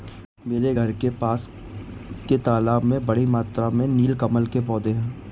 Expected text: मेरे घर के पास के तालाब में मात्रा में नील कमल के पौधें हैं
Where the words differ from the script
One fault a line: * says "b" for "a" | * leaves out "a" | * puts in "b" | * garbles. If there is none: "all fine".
* puts in "बड़ी"